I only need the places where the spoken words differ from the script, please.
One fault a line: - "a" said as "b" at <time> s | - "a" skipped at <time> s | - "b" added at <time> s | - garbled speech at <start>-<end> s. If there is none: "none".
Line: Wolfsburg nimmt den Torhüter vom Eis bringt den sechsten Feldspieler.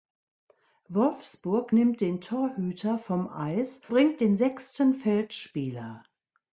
none